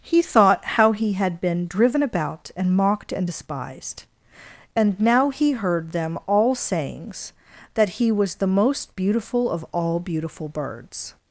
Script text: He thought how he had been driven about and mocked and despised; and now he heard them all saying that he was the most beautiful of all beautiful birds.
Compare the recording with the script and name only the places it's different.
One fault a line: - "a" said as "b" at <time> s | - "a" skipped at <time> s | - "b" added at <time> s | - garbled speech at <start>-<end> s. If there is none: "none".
- "saying" said as "sayings" at 6.5 s